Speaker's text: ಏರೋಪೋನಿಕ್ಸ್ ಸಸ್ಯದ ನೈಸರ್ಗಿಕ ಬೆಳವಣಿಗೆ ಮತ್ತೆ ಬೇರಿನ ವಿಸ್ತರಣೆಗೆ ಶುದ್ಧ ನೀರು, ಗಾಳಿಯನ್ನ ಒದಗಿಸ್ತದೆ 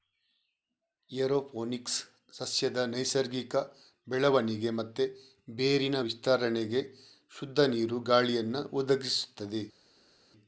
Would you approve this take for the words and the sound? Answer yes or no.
yes